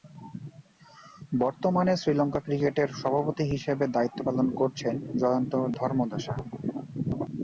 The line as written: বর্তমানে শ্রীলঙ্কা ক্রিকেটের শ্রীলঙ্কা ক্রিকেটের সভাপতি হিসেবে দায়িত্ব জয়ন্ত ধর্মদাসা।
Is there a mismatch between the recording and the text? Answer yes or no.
yes